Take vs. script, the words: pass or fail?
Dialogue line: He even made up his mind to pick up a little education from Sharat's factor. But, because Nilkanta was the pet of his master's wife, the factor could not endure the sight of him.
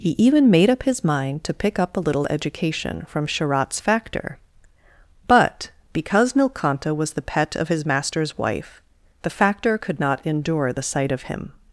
pass